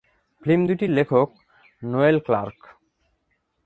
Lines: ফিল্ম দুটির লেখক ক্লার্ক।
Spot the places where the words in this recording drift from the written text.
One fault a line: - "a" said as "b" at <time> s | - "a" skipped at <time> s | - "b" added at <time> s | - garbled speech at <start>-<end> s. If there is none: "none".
- "নোয়েল" added at 1.8 s